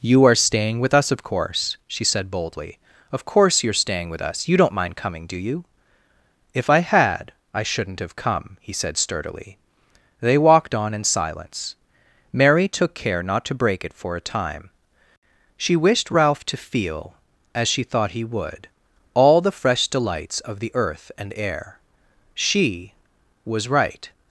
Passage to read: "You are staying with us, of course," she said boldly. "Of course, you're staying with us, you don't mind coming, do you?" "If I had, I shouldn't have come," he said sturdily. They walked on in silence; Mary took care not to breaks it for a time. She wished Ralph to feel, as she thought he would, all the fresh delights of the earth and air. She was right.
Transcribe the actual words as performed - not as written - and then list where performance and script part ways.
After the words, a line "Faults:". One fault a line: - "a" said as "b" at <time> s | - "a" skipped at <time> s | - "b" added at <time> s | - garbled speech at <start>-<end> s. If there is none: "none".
"You are staying with us, of course," she said boldly. "Of course, you're staying with us, you don't mind coming, do you?" "If I had, I shouldn't have come," he said sturdily. They walked on in silence; Mary took care not to break it for a time. She wished Ralph to feel, as she thought he would, all the fresh delights of the earth and air. She was right.
Faults:
- "breaks" said as "break" at 13.6 s